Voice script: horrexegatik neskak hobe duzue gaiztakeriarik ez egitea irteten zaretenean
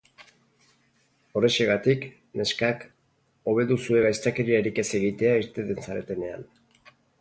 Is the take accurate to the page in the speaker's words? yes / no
yes